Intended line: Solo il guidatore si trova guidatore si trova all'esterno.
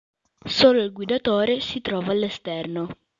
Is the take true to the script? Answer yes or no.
no